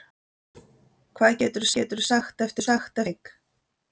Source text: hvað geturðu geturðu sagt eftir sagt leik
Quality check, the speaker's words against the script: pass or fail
pass